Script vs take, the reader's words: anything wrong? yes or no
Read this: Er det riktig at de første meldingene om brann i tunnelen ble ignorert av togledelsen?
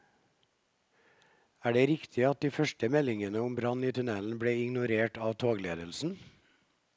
no